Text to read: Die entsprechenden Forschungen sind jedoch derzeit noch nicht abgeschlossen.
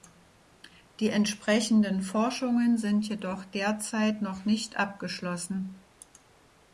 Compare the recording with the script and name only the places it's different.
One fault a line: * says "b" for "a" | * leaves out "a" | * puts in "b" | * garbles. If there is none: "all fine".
all fine